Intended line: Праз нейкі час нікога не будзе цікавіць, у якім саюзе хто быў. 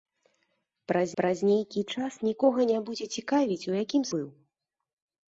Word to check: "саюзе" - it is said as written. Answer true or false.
false